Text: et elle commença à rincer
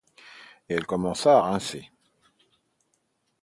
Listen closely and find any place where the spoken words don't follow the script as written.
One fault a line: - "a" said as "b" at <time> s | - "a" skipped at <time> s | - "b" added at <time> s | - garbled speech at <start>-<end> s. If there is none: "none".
none